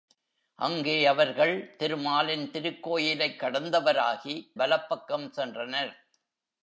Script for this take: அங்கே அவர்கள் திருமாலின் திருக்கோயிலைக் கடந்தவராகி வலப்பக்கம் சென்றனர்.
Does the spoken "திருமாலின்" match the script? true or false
true